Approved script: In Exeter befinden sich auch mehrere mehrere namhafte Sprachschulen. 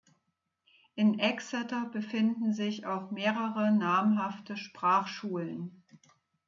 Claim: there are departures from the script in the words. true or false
true